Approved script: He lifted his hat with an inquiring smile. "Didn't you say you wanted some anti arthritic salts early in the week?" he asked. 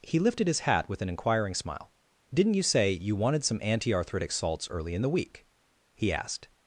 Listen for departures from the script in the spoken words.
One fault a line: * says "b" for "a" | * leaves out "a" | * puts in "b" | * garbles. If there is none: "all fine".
all fine